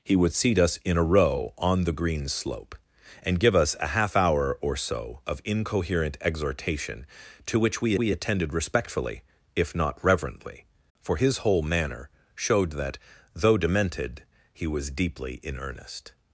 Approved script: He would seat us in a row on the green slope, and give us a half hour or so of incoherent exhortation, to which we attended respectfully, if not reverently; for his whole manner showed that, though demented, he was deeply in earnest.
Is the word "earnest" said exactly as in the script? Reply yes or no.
yes